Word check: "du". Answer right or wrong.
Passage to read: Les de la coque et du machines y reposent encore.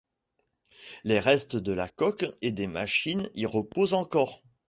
wrong